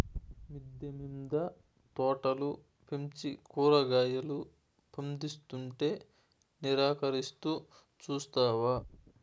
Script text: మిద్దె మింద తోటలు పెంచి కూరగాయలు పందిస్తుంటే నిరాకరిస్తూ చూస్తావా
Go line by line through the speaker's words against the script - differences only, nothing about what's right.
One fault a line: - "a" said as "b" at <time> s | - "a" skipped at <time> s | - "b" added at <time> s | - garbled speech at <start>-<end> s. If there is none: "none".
none